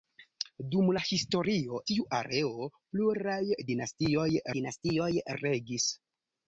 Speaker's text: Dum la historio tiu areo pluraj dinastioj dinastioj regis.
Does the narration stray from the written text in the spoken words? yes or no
no